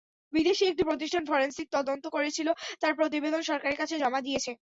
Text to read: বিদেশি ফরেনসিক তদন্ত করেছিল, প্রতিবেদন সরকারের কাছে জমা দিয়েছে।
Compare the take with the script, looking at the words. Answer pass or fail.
fail